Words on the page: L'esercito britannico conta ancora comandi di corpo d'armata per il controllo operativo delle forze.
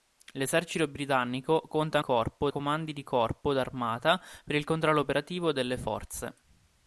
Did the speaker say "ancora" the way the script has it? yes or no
no